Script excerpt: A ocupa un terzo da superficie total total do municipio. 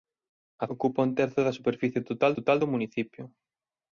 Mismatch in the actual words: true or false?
false